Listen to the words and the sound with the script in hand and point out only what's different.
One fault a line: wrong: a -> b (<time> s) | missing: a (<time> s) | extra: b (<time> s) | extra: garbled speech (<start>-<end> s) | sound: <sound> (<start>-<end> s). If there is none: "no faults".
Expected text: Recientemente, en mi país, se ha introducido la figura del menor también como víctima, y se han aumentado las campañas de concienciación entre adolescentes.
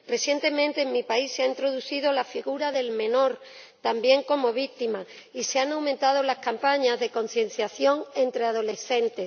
no faults